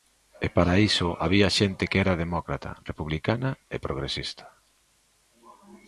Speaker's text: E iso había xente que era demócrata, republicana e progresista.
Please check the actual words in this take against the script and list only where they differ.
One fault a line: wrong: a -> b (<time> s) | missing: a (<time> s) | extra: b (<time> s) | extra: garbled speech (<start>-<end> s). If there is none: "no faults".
extra: para (0.5 s)